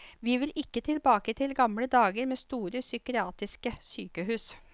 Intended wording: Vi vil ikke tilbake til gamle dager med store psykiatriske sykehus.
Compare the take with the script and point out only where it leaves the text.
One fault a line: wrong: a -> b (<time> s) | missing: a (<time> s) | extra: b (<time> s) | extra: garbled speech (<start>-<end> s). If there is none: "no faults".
no faults